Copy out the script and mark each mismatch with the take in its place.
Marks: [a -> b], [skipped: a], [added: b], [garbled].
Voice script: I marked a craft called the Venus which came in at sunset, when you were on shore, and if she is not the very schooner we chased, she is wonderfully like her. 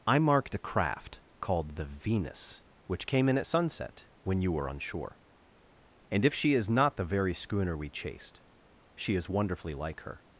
I marked a craft called the Venus which came in at sunset, when you were on shore, and if she is not the very schooner we chased, she is wonderfully like her.